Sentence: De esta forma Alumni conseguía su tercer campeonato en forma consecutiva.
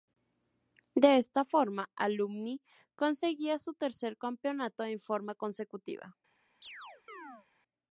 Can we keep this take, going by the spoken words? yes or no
yes